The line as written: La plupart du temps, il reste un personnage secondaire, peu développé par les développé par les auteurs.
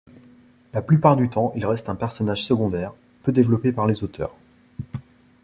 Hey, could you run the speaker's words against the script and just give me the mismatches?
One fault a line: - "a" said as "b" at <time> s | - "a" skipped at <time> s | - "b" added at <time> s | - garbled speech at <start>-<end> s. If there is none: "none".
- "développé par les" skipped at 4.0 s